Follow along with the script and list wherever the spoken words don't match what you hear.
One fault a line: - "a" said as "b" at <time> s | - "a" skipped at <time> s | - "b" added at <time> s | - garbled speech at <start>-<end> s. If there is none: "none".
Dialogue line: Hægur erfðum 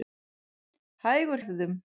none